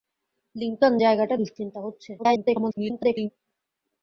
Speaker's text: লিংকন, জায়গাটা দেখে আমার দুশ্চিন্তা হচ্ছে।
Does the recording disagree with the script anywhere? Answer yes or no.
yes